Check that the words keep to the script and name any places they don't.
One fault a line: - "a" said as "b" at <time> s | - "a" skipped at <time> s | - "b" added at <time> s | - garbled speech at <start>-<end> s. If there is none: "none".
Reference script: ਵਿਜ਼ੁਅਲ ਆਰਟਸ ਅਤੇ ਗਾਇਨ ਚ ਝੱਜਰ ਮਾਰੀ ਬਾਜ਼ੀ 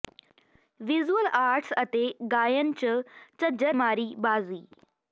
none